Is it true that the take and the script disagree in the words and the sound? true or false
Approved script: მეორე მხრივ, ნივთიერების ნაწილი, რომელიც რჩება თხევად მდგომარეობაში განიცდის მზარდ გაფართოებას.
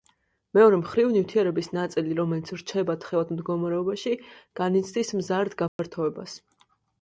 true